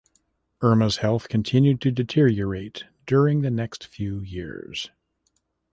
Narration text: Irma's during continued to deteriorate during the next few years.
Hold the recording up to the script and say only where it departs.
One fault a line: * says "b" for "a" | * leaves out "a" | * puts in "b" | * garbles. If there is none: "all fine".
* says "health" for "during"